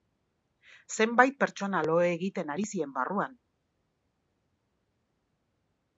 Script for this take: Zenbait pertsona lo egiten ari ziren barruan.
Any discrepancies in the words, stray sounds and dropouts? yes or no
no